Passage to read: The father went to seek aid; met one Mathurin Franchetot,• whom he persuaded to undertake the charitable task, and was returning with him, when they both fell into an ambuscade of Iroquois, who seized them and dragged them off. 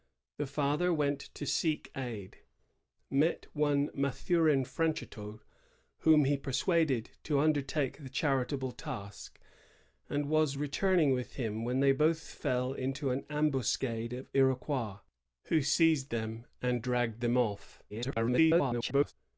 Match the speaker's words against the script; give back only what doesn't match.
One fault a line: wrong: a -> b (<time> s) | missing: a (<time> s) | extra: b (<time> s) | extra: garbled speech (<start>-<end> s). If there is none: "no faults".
extra: garbled speech (17.9-19.1 s)